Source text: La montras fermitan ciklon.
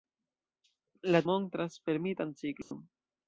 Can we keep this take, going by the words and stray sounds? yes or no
no